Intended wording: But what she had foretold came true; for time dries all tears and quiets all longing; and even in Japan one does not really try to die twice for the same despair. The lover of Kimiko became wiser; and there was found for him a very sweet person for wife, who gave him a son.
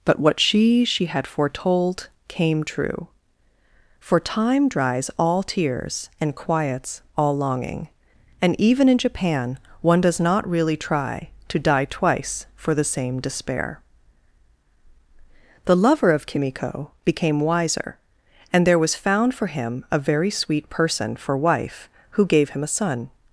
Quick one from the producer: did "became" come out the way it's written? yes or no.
yes